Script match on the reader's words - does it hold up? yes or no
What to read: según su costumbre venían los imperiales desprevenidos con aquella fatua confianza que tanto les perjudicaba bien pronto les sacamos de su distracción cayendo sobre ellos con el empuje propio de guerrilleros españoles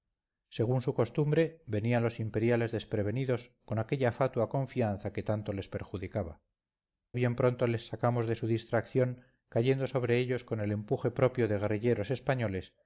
yes